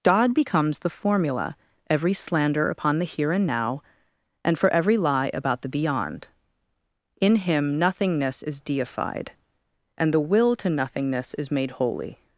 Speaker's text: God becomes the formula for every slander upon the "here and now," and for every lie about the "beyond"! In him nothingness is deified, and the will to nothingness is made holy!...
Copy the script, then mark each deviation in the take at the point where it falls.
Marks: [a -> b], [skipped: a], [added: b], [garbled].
God becomes the formula [skipped: for] every slander upon the "here and now," and for every lie about the "beyond"! In him nothingness is deified, and the will to nothingness is made holy!...